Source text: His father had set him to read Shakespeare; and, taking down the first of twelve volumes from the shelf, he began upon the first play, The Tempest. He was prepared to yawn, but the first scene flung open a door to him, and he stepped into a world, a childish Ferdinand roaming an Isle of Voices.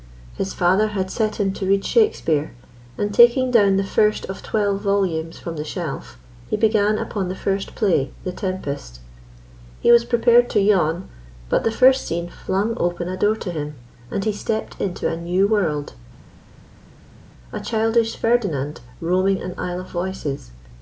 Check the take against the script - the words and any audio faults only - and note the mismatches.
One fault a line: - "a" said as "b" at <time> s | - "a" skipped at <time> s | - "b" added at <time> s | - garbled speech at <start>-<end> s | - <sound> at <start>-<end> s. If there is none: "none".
- "new" added at 15.2 s